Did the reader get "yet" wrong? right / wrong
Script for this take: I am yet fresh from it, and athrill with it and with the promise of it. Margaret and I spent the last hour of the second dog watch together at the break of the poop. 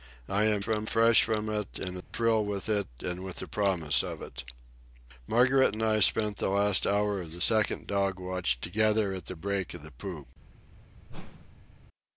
wrong